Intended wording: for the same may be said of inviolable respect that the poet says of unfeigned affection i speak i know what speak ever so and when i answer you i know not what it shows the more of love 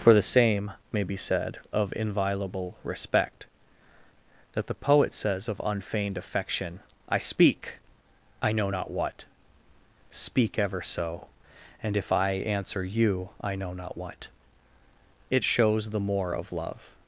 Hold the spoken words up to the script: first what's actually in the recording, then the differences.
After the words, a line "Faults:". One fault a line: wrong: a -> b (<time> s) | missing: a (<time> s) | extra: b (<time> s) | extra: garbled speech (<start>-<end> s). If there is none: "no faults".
for the same may be said of inviolable respect that the poet says of unfeigned affection i speak i know not what speak ever so and if i answer you i know not what it shows the more of love
Faults:
extra: not (8.7 s)
wrong: when -> if (12.0 s)